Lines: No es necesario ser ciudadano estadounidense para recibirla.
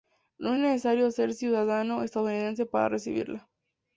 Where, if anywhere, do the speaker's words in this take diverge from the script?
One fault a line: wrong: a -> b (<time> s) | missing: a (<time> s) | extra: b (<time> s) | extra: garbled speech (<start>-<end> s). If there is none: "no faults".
no faults